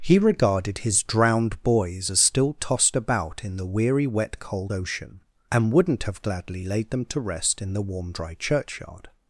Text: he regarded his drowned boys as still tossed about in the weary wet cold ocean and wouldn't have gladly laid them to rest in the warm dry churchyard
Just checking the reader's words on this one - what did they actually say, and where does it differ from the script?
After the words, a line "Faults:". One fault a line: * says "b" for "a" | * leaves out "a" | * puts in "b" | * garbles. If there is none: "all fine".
he regarded his drowned boys as still tossed about in the weary wet cold ocean and wouldn't have gladly laid them to rest in the warm dry churchyard
Faults:
all fine